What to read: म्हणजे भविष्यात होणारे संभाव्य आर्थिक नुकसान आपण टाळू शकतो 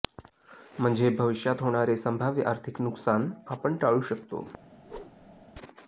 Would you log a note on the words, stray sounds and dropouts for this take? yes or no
yes